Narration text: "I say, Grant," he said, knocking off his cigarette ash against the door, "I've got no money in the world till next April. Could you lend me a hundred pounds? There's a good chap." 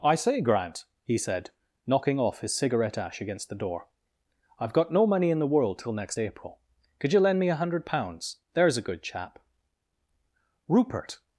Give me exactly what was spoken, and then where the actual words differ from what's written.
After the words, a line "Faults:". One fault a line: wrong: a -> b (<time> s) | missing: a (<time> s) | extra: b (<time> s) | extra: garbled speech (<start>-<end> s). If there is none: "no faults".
"I say, Grant," he said, knocking off his cigarette ash against the door, "I've got no money in the world till next April. Could you lend me a hundred pounds? There's a good chap." Rupert
Faults:
extra: Rupert (10.7 s)